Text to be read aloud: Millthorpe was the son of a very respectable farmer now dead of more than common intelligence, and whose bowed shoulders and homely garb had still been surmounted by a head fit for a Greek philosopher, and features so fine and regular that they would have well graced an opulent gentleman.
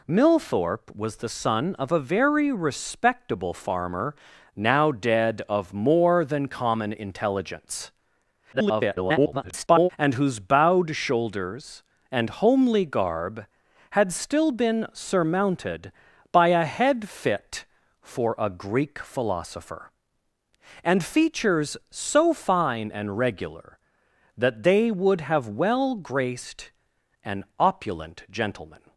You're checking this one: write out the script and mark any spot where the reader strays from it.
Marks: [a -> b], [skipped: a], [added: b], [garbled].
Millthorpe was the son of a very respectable farmer now dead of more than common intelligence, [garbled] and whose bowed shoulders and homely garb had still been surmounted by a head fit for a Greek philosopher, and features so fine and regular that they would have well graced an opulent gentleman.